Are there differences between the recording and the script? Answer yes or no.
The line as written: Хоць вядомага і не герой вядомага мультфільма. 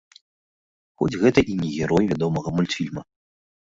yes